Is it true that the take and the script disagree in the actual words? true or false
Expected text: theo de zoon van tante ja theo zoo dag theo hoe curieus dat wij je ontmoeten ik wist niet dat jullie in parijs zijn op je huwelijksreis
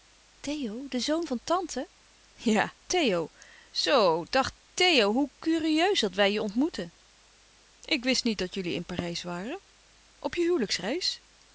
true